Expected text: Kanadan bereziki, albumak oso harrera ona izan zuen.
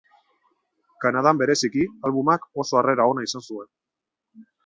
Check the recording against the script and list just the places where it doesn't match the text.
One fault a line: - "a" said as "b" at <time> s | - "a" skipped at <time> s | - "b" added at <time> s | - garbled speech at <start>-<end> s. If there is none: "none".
none